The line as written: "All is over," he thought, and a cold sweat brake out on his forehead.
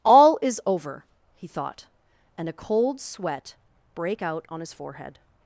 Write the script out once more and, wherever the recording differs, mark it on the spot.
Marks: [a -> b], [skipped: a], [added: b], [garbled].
"All is over," he thought, and a cold sweat brake out on his forehead.